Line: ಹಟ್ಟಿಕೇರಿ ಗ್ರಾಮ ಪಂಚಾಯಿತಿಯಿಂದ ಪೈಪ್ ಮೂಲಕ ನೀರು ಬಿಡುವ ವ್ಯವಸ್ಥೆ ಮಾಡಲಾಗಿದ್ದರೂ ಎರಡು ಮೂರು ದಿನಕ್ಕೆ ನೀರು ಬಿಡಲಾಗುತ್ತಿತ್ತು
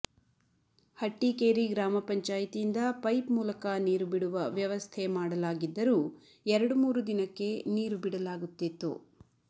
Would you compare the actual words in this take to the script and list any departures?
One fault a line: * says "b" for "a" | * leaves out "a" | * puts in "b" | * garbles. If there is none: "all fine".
all fine